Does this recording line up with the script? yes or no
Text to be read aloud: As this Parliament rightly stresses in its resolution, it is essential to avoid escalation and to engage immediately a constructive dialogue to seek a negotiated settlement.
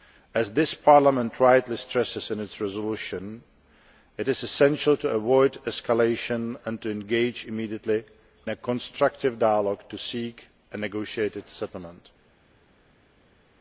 yes